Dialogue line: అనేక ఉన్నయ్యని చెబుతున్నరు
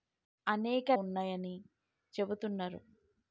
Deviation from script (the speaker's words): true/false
false